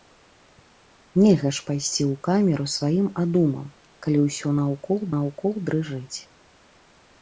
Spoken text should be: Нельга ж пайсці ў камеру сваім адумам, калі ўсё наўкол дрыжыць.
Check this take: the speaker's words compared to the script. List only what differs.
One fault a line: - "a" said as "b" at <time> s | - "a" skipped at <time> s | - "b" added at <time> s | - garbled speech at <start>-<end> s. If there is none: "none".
- "наўкол" added at 5.2 s